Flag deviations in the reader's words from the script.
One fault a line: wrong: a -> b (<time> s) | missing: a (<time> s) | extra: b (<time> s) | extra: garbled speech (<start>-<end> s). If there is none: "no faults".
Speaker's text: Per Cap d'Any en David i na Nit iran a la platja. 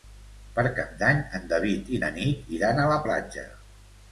no faults